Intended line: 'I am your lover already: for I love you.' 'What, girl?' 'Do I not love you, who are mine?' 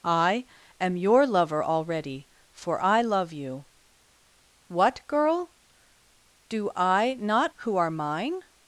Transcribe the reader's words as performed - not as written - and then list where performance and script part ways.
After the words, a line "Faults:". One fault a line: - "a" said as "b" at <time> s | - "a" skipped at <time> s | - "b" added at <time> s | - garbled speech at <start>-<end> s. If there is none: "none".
'I am your lover already: for I love you.' 'What, girl?' 'Do I not who are mine?'
Faults:
- "love you" skipped at 7.5 s